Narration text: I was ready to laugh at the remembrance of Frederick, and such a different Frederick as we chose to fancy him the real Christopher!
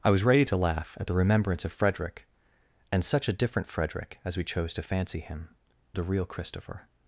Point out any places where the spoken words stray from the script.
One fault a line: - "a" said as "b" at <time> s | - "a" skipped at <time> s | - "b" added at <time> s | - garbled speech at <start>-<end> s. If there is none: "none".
none